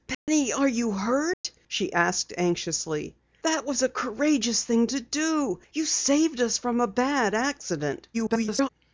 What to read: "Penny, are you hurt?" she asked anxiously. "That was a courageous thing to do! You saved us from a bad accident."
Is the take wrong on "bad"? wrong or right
right